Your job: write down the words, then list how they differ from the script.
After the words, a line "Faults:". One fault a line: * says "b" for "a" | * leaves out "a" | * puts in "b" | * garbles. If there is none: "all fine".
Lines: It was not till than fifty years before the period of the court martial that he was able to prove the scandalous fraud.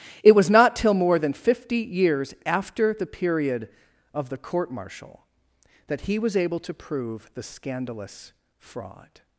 It was not till more than fifty years after the period of the court martial that he was able to prove the scandalous fraud.
Faults:
* puts in "more"
* says "after" for "before"